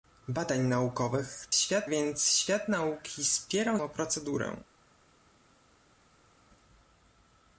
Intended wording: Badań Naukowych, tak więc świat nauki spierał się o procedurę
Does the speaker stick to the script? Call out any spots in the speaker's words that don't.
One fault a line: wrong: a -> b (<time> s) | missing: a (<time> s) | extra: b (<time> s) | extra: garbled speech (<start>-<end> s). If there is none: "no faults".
wrong: tak -> świat (1.5 s)
missing: się (3.8 s)